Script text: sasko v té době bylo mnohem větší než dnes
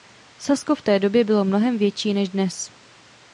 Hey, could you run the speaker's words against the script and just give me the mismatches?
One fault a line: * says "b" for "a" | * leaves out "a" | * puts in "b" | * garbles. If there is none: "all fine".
all fine